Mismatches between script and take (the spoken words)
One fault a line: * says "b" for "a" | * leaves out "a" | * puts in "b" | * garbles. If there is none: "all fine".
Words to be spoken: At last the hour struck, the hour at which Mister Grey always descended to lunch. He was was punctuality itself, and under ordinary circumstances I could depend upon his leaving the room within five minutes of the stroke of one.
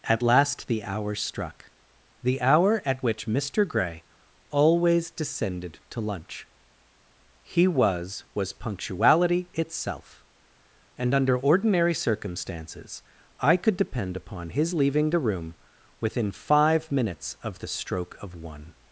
all fine